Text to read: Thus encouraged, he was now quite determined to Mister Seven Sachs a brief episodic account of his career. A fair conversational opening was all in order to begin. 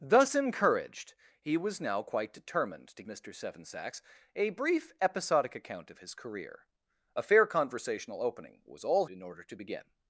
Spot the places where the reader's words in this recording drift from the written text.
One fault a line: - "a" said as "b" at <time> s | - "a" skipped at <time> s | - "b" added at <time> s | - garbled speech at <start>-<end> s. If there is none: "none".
none